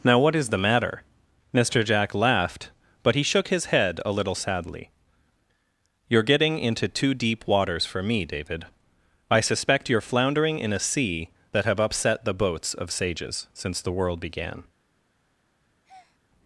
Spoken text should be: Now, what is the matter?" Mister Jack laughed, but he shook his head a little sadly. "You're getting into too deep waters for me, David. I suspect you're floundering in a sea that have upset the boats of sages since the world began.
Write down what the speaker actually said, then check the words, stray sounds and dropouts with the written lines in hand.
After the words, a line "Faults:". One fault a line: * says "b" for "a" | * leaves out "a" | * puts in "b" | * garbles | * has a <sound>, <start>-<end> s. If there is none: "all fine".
Now, what is the matter?" Mister Jack laughed, but he shook his head a little sadly. "You're getting into too deep waters for me, David. I suspect you're floundering in a sea that have upset the boats of sages since the world began.
Faults:
* has a breath, 15.8-16.2 s